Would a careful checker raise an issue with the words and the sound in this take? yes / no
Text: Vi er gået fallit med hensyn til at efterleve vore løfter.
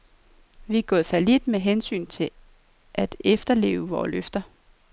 no